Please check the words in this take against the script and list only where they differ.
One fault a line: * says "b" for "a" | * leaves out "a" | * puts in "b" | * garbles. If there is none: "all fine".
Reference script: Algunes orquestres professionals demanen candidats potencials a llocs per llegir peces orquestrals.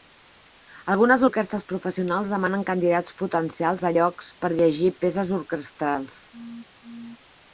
all fine